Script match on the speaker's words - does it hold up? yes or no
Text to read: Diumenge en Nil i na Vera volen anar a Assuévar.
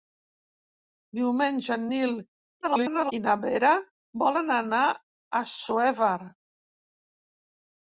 no